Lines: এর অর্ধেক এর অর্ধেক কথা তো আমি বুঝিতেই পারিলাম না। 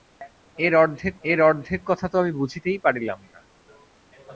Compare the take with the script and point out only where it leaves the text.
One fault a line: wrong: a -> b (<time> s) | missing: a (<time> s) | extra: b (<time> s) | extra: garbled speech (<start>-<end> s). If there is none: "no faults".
no faults